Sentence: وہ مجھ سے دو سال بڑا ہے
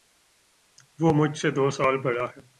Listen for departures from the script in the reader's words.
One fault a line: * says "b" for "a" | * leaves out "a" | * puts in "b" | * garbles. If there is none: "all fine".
all fine